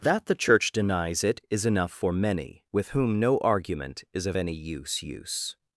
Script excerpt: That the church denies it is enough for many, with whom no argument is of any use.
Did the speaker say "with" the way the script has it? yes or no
yes